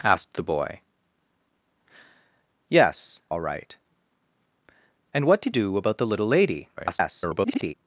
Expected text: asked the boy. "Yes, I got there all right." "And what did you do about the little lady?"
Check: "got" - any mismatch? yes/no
yes